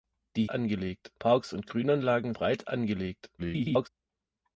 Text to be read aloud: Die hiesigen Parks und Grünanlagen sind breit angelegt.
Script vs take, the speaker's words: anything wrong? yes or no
yes